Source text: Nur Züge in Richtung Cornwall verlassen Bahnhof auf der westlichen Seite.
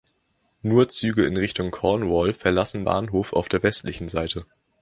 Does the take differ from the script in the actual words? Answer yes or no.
no